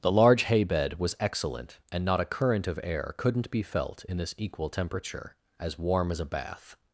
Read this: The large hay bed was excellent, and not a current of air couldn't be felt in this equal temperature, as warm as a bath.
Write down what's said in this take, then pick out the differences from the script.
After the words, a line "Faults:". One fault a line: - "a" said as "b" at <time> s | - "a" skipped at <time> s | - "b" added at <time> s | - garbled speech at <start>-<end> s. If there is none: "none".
The large hay bed was excellent, and not a current of air couldn't be felt in this equal temperature, as warm as a bath.
Faults:
none